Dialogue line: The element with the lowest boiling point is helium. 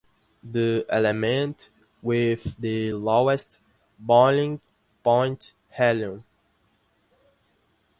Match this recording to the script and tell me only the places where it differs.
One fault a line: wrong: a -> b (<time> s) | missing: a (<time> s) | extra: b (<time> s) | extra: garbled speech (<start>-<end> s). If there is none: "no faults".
missing: is (5.5 s)